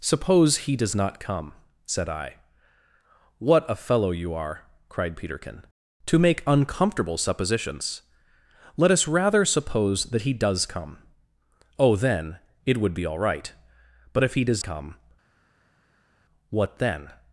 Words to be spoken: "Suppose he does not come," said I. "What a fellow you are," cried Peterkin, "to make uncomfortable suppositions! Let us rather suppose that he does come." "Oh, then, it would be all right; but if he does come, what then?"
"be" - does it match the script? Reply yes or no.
yes